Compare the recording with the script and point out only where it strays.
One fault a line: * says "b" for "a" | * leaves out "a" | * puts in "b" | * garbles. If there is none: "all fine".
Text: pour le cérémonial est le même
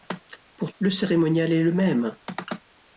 all fine